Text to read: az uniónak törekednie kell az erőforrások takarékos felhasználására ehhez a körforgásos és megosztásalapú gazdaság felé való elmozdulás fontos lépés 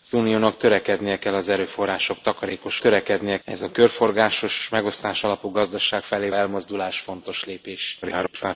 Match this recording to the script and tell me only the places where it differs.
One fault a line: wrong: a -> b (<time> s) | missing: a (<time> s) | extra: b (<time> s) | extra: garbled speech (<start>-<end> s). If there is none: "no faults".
wrong: felhasználására -> törekednie (2.8 s)
missing: való (6.3 s)
extra: garbled speech (8.0-8.6 s)